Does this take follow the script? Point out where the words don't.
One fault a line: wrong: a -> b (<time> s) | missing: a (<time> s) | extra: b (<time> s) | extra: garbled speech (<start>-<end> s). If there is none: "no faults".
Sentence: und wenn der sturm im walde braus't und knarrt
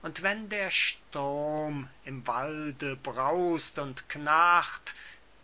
no faults